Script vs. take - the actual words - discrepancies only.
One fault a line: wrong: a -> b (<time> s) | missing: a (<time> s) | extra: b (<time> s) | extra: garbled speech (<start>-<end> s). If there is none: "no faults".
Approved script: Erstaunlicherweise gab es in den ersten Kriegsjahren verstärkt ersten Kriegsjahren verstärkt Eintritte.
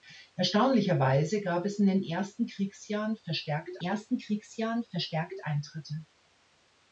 no faults